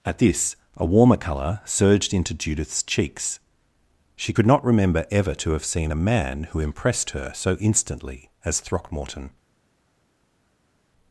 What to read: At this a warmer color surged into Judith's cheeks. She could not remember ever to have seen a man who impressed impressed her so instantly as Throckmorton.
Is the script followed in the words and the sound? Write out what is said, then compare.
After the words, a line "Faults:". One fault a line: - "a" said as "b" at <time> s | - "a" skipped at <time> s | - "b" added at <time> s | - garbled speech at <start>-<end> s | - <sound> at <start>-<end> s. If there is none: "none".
At this a warmer color surged into Judith's cheeks. She could not remember ever to have seen a man who impressed her so instantly as Throckmorton.
Faults:
- "impressed" skipped at 7.1 s